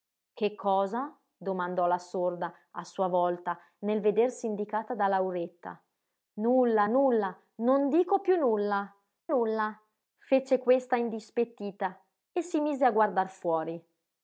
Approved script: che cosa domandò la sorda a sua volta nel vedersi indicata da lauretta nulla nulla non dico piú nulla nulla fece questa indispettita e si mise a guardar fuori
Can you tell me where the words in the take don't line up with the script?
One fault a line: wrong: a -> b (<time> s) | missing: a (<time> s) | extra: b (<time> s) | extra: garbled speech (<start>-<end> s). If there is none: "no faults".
no faults